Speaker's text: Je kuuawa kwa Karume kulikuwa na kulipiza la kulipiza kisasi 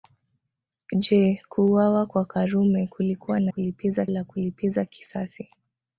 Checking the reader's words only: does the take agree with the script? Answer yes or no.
yes